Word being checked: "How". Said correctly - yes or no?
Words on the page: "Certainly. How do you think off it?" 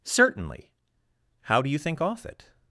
yes